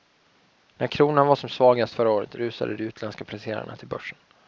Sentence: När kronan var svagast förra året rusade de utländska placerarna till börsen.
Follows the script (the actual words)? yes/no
no